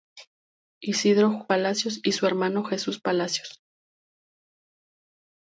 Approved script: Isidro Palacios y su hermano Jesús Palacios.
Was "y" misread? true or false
false